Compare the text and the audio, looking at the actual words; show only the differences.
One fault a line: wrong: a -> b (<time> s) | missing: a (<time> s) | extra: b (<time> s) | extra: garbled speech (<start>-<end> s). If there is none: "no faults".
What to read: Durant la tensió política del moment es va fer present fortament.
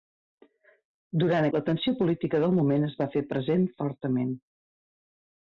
no faults